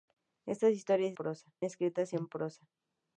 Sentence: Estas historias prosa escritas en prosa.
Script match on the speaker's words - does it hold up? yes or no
yes